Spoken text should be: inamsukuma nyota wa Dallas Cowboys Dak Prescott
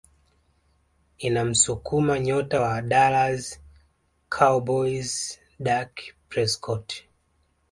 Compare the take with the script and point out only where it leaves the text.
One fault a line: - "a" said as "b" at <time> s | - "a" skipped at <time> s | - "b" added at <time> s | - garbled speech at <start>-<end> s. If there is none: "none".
none